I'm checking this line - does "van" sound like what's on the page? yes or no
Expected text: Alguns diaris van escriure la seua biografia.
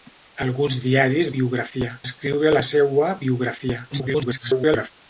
no